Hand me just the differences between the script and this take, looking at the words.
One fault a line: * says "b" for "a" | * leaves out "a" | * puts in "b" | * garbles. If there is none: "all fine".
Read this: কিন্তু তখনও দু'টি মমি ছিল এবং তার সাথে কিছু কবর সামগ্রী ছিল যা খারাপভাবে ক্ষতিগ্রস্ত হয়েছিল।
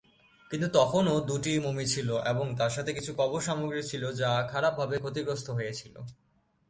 all fine